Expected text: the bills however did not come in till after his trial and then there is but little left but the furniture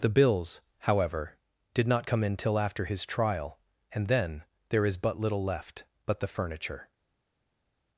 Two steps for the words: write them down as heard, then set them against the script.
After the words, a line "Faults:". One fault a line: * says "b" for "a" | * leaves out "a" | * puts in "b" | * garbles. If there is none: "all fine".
the bills however did not come in till after his trial and then there is but little left but the furniture
Faults:
all fine